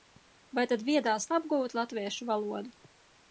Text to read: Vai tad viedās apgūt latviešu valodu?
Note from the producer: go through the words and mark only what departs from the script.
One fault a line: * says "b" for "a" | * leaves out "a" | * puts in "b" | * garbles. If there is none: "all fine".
all fine